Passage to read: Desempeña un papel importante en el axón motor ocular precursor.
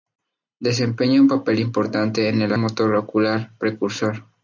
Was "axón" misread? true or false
true